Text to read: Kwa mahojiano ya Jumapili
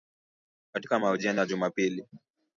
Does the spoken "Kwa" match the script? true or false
false